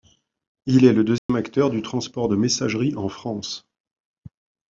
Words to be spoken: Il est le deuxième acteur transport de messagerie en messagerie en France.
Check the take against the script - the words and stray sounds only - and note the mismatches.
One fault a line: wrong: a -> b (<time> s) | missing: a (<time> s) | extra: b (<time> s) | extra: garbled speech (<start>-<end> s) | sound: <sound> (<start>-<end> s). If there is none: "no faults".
sound: dropout (1.2-1.3 s)
extra: du (1.7 s)
missing: messagerie en (3.1 s)